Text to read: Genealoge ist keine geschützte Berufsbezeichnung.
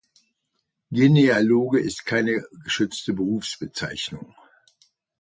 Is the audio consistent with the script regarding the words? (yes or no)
yes